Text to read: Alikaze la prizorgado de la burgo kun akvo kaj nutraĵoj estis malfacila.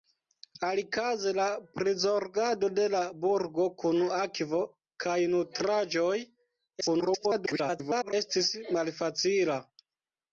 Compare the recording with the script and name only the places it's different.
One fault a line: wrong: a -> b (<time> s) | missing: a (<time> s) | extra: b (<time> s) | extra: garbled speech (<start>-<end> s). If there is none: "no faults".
extra: garbled speech (6.8-8.1 s)